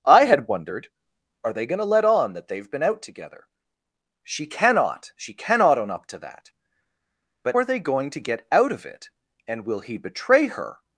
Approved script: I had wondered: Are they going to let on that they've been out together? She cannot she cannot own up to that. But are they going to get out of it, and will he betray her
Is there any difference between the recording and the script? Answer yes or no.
no